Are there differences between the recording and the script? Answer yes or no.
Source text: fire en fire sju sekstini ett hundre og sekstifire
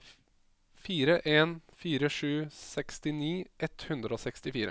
no